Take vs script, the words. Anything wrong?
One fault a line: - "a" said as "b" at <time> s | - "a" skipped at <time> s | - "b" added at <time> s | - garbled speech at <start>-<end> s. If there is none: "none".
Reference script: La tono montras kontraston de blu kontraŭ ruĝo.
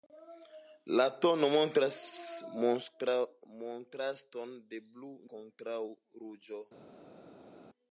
none